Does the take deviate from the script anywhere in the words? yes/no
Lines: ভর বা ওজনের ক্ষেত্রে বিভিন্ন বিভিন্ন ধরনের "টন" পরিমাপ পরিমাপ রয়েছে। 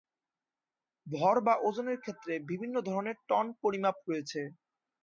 yes